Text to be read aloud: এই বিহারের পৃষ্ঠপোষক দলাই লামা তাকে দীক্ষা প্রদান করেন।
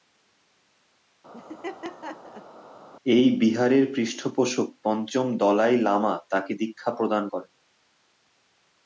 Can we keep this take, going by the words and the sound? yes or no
no